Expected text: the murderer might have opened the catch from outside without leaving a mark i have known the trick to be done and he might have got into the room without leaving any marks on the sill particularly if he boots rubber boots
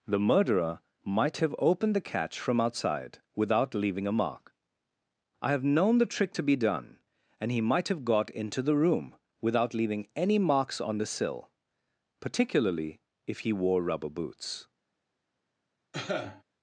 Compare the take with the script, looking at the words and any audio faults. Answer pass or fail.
fail